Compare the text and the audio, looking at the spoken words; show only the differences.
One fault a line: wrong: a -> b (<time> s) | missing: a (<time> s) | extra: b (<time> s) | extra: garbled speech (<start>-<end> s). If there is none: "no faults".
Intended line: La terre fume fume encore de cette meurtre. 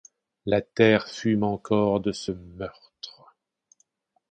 missing: fume (1.4 s)
wrong: cette -> ce (2.1 s)